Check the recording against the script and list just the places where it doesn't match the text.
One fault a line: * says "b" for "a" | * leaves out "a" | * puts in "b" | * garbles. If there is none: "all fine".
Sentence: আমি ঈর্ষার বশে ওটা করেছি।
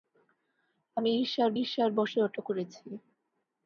* puts in "ঈর্ষার"